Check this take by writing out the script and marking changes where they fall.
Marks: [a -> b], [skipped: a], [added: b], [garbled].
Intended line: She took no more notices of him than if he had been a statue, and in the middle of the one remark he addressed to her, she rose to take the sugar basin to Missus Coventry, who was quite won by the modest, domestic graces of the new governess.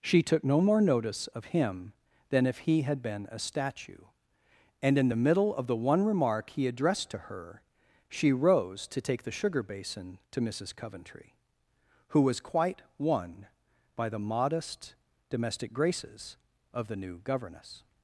She took no more [notices -> notice] of him than if he had been a statue, and in the middle of the one remark he addressed to her, she rose to take the sugar basin to Missus Coventry, who was quite won by the modest, domestic graces of the new governess.